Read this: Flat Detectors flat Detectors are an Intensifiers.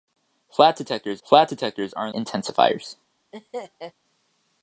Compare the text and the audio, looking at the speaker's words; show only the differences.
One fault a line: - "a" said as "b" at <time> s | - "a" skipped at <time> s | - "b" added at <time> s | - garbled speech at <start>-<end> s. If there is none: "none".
none